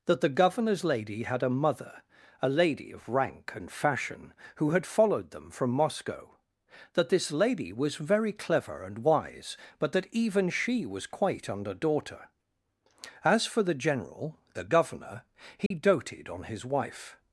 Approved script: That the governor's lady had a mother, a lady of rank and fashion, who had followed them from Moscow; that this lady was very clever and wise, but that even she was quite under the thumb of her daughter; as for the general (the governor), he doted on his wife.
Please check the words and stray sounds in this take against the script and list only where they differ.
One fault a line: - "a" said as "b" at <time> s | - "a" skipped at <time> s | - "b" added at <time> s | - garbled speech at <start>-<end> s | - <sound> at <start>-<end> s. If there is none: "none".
- "the thumb of her" skipped at 11.8 s
- dropout at 15.7-15.7 s